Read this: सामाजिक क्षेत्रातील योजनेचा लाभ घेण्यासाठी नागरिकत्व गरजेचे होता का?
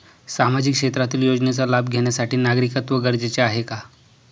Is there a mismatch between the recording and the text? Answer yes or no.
yes